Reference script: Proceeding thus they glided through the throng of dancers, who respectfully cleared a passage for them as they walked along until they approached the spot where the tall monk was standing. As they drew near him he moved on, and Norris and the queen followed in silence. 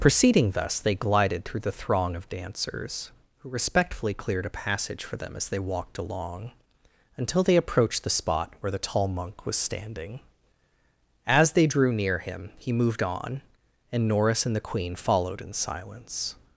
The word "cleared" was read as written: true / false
true